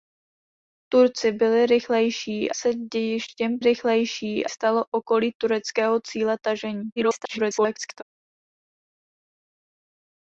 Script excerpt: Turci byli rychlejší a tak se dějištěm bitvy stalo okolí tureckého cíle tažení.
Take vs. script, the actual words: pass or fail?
fail